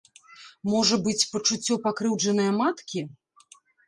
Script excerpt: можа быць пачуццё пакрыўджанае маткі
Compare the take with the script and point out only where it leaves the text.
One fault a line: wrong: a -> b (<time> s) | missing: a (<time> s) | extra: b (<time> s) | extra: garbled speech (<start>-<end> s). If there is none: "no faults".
no faults